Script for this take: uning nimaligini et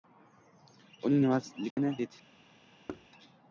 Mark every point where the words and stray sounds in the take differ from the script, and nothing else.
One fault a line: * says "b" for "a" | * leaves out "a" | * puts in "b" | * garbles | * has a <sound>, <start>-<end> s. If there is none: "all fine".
* has a dropout, 1.7-1.8 s
* has a thud, 2.9-3.1 s